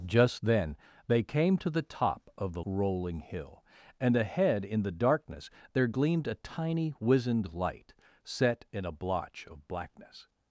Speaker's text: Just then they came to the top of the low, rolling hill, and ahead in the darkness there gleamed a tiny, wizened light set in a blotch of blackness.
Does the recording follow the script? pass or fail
fail